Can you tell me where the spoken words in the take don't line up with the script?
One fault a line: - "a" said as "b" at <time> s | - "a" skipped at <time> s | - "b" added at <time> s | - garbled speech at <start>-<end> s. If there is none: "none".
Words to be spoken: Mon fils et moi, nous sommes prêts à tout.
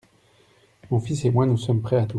none